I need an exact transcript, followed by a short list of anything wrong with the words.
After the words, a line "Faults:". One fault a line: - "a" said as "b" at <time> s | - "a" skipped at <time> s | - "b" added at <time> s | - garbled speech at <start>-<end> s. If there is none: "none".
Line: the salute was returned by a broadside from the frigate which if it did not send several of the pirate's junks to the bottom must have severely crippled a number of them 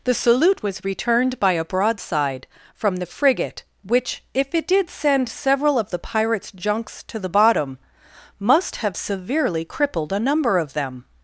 the salute was returned by a broadside from the frigate which if it did send several of the pirate's junks to the bottom must have severely crippled a number of them
Faults:
- "not" skipped at 4.9 s